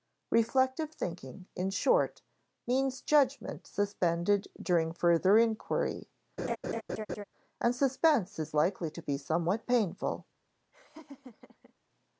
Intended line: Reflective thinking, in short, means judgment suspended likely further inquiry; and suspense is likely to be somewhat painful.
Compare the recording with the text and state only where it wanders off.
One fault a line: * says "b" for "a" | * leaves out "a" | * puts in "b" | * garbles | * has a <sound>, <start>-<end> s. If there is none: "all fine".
* says "during" for "likely"
* has a laugh, 6.4-7.2 s
* has a laugh, 10.7-11.7 s